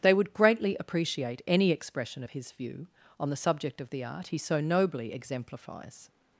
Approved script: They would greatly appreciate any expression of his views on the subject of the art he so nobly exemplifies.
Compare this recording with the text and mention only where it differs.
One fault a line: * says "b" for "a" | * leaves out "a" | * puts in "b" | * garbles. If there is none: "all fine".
* says "view" for "views"